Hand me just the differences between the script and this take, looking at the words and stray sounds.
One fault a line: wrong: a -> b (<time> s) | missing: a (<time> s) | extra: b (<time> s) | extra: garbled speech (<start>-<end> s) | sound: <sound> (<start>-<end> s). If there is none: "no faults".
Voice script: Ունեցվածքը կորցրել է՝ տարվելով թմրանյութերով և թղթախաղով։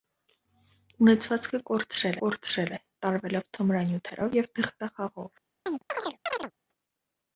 extra: կորցրել (2.2 s)
sound: chirp (5.7-6.5 s)